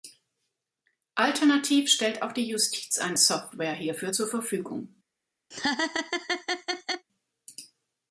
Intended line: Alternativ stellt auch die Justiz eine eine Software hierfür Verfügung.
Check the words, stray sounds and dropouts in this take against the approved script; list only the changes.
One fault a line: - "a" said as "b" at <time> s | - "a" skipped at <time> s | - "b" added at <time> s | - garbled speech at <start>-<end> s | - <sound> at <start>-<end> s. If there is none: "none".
- "eine" skipped at 3.2 s
- "zur" added at 4.1 s
- laugh at 5.5-7.1 s